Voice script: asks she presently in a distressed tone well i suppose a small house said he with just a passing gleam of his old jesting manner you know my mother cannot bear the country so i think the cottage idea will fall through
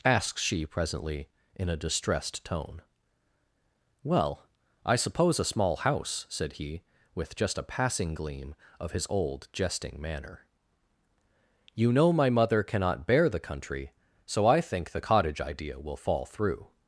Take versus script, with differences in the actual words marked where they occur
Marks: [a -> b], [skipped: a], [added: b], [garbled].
asks she presently in a distressed tone well i suppose a small house said he with just a passing gleam of his old jesting manner you know my mother cannot bear the country so i think the cottage idea will fall through